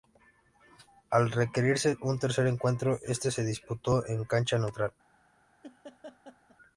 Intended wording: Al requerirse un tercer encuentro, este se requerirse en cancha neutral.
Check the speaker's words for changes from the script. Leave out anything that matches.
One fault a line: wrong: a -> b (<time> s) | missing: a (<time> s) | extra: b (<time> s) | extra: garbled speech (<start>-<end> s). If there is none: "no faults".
wrong: requerirse -> disputó (3.4 s)